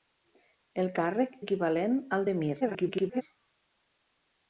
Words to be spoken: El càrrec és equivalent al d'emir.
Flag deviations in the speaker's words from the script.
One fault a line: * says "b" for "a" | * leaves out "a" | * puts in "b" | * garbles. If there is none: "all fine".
* leaves out "és"
* garbles